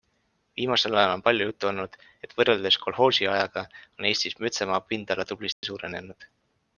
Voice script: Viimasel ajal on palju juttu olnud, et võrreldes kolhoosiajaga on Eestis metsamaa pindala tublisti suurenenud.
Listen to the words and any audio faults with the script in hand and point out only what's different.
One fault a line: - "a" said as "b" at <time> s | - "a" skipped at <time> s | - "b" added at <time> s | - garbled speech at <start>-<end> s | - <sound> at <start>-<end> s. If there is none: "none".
- dropout at 5.5-5.6 s